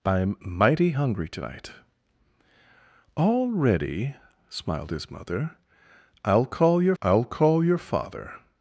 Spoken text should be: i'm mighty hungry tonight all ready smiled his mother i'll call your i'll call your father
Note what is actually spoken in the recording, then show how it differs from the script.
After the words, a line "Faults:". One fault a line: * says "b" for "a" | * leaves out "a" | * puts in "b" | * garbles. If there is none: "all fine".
i'm mighty hungry tonight all ready smiled his mother i'll call your i'll call your father
Faults:
all fine